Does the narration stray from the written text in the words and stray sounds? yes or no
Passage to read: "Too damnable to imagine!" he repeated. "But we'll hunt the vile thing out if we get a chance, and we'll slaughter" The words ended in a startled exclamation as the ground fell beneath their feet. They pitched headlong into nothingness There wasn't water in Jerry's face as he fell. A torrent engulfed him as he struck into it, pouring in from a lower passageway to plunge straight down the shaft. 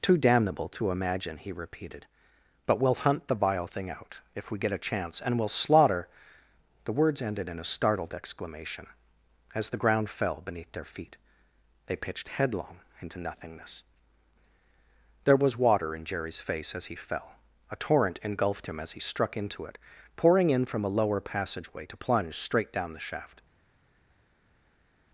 yes